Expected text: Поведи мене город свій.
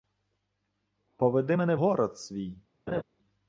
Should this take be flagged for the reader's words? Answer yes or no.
no